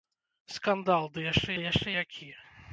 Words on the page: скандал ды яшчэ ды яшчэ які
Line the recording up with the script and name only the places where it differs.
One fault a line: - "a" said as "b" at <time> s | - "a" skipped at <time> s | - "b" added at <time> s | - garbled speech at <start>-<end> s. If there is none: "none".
none